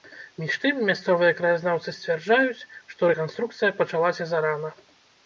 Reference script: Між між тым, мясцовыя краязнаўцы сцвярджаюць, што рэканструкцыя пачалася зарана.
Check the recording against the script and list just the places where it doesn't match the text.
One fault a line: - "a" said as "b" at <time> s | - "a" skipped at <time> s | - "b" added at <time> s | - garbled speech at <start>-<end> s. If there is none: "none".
- "між" skipped at 0.5 s